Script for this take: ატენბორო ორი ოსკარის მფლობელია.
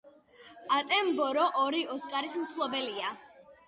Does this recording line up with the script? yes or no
yes